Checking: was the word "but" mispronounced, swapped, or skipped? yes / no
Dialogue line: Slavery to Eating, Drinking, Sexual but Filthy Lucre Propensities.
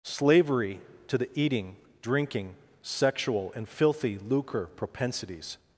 yes